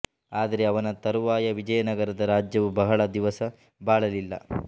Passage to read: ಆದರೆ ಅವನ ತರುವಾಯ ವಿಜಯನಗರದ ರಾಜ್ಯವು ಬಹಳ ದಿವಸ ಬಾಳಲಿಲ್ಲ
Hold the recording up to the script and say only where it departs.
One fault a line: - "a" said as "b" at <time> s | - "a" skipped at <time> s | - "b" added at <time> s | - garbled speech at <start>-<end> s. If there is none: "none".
none